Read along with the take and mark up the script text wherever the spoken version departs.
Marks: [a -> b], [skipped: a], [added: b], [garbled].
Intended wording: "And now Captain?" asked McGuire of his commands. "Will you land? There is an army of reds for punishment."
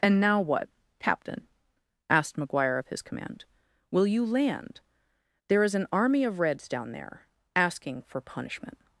"And now [added: what] Captain?" asked McGuire of his [commands. -> command] "Will you land? There is an army of reds [added: down there asking] for punishment."